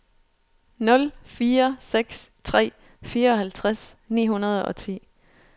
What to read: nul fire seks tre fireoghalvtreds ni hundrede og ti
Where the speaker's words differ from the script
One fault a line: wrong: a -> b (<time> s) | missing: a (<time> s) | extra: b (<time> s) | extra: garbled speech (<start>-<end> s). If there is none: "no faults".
no faults